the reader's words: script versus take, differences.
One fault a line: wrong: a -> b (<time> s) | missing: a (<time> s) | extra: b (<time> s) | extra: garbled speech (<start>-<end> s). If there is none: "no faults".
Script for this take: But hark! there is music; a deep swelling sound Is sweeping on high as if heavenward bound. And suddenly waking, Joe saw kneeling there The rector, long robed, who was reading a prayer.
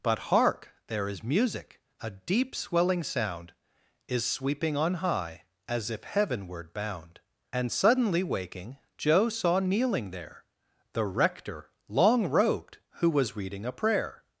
no faults